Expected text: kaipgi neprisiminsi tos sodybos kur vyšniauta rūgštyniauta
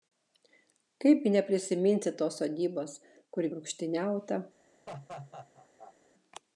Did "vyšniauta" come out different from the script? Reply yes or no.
yes